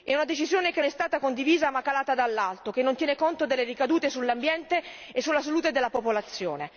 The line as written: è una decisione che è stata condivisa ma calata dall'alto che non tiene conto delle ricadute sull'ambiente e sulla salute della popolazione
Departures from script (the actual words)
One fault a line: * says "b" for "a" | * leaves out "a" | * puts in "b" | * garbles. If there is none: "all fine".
all fine